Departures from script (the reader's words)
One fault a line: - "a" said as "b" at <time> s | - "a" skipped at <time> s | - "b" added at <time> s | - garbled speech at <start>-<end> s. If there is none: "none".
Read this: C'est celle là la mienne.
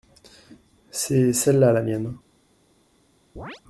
none